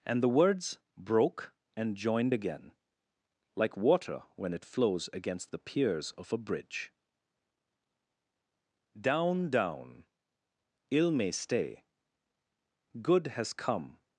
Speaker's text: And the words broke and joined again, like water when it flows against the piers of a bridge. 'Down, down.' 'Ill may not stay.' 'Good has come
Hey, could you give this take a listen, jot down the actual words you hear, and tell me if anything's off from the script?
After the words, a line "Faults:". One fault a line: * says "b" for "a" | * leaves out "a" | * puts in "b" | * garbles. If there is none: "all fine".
And the words broke and joined again, like water when it flows against the piers of a bridge. 'Down, down.' 'Ill may stay.' 'Good has come
Faults:
* leaves out "not"